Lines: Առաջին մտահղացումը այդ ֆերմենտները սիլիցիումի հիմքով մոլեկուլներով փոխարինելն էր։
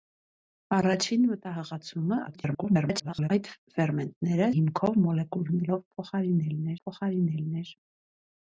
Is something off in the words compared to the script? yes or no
yes